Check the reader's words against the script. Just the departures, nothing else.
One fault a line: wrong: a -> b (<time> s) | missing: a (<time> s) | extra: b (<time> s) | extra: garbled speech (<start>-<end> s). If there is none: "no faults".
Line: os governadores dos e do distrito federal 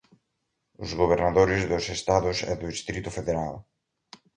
extra: estados (2.0 s)